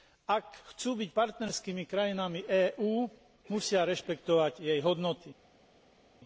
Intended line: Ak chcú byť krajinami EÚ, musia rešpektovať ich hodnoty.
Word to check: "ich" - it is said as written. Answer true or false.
false